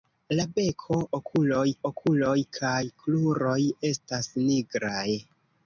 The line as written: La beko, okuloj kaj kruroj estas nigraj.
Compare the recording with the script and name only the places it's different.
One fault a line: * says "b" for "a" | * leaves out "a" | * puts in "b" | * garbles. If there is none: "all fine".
* puts in "okuloj"